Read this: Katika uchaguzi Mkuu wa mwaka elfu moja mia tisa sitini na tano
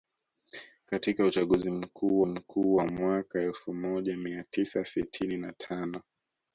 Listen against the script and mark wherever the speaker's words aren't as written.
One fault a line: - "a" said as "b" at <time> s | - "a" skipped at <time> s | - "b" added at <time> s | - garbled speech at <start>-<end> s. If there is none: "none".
- "Mkuu" added at 2.2 s